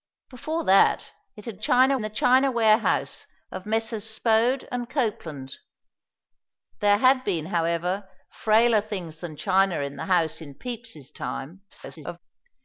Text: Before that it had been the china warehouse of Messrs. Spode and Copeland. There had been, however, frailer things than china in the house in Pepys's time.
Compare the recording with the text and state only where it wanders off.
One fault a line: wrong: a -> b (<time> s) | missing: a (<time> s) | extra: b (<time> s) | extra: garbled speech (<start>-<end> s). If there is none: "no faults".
wrong: been -> china (1.6 s)
extra: garbled speech (11.7-12.2 s)